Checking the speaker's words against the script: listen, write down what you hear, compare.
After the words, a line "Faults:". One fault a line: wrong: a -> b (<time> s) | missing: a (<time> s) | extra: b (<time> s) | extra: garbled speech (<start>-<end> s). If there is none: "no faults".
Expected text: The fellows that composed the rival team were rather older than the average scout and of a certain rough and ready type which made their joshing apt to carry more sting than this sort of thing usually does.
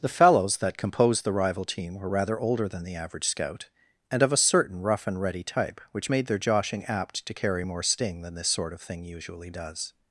The fellows that composed the rival team were rather older than the average scout and of a certain rough and ready type which made their joshing apt to carry more sting than this sort of thing usually does.
Faults:
no faults